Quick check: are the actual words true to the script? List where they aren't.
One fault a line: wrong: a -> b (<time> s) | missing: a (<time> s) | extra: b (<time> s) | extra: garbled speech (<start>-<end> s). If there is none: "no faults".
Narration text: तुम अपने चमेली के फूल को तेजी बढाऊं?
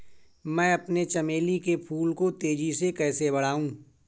wrong: तुम -> मैं (0.5 s)
extra: से कैसे (2.7 s)